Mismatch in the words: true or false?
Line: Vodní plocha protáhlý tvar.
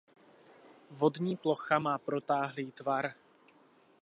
true